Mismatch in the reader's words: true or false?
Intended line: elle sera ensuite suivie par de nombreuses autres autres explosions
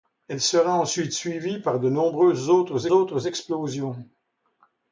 false